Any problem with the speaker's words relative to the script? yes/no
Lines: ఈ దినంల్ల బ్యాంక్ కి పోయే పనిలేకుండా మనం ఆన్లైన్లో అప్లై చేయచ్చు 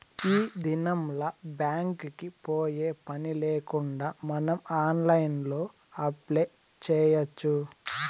no